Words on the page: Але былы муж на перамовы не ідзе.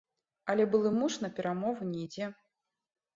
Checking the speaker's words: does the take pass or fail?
pass